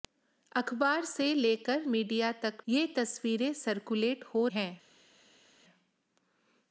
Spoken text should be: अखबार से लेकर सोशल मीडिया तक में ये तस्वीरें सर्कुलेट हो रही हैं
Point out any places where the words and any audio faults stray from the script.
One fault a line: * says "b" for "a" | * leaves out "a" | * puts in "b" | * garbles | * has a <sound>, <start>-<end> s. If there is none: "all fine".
* leaves out "सोशल"
* leaves out "में"
* leaves out "रही"